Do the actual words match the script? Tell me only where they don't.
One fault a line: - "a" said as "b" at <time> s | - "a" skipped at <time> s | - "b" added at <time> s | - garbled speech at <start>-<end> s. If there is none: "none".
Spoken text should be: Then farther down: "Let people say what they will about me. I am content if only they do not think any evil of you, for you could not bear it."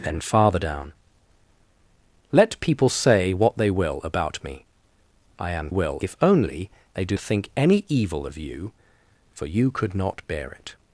- "content" said as "will" at 5.7 s
- "not" skipped at 7.2 s